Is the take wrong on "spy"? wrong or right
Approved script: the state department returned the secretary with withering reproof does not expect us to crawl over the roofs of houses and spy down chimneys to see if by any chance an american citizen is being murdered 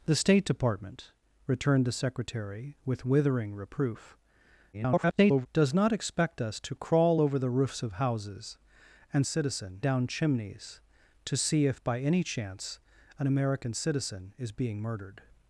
wrong